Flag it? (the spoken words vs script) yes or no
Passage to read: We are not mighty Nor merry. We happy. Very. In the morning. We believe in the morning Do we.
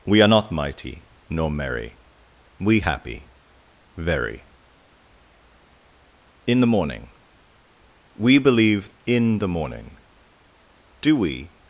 no